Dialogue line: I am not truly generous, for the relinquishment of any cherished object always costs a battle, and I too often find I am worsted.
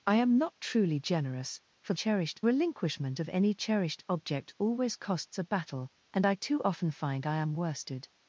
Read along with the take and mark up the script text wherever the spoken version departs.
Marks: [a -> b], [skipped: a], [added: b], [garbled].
I am not truly generous, for [the -> cherished] relinquishment of any cherished object always costs a battle, and I too often find I am worsted.